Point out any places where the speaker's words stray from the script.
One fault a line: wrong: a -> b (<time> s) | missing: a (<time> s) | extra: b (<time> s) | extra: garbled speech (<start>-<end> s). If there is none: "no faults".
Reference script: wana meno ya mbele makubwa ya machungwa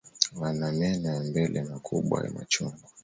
no faults